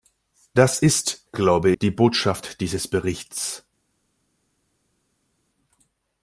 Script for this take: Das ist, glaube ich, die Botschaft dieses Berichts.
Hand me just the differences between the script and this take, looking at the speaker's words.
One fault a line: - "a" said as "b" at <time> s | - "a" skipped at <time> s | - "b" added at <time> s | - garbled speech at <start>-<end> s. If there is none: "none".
- "ich" skipped at 1.7 s